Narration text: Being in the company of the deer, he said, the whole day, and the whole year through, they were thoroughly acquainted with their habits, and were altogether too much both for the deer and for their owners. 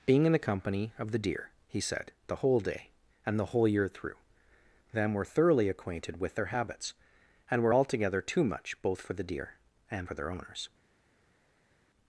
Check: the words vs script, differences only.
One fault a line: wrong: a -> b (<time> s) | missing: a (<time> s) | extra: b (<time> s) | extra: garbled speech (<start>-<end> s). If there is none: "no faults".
wrong: they -> them (4.9 s)